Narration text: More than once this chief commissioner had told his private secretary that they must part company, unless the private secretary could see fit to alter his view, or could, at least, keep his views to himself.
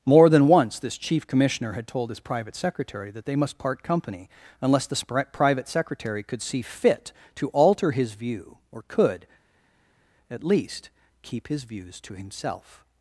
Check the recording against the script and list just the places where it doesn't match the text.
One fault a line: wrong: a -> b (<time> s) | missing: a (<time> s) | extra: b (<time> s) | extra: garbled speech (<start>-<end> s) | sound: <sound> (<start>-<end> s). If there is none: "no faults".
no faults